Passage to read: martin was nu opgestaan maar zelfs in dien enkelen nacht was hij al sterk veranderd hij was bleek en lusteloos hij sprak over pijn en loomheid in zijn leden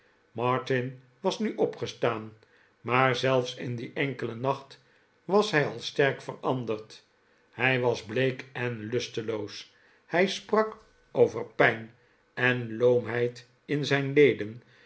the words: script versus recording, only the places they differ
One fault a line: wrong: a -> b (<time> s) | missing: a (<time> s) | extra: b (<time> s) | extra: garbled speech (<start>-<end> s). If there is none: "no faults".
no faults